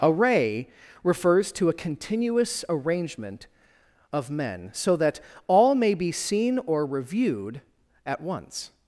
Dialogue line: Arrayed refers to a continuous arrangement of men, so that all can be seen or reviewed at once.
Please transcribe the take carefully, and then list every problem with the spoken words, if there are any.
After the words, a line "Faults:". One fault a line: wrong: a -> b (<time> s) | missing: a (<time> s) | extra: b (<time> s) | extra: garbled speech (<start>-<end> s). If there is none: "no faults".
Array refers to a continuous arrangement of men, so that all may be seen or reviewed at once.
Faults:
wrong: Arrayed -> Array (0.0 s)
wrong: can -> may (5.7 s)